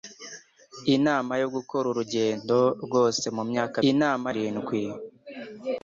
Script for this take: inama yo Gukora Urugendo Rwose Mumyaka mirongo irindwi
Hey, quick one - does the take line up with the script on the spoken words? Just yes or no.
no